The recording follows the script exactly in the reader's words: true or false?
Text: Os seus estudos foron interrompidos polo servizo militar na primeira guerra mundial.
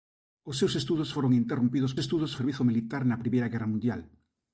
false